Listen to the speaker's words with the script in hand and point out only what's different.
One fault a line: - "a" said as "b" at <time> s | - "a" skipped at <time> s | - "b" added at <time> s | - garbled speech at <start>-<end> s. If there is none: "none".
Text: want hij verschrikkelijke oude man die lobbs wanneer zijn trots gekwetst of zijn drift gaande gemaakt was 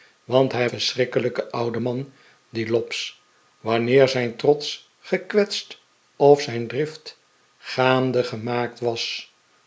none